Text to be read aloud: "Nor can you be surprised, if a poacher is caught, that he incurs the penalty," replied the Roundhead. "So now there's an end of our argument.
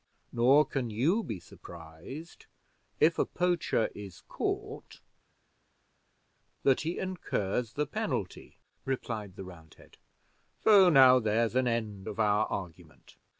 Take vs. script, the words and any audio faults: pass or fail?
pass